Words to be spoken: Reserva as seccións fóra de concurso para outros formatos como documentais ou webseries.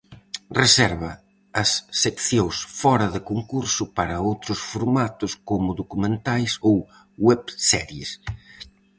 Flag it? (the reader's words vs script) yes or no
no